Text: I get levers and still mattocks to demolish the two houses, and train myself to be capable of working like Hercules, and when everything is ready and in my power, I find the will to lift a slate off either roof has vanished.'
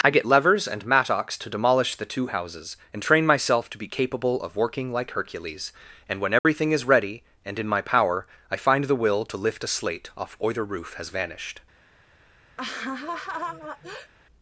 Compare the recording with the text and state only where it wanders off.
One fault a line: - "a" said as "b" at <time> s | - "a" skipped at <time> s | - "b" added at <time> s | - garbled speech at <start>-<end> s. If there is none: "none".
- "still" skipped at 0.9 s